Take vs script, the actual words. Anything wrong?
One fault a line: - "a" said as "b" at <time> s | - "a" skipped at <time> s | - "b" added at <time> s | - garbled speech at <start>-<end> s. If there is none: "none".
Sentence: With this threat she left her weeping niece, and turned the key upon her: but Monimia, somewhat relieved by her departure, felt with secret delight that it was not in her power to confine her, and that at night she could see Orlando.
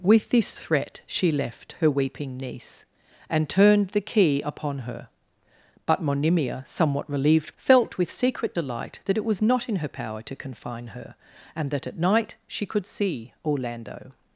- "by her departure" skipped at 7.5 s